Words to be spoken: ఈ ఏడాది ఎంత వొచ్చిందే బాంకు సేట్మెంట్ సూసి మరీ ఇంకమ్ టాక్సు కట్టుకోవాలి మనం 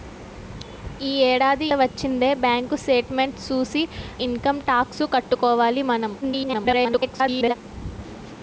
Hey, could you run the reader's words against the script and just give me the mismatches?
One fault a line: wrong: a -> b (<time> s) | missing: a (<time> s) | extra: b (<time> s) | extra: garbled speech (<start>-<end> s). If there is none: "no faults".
missing: ఎంత (1.7 s)
missing: మరీ (3.8 s)
extra: garbled speech (6.2-7.5 s)